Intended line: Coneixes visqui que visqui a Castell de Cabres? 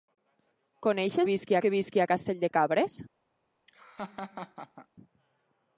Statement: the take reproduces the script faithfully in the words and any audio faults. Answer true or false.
false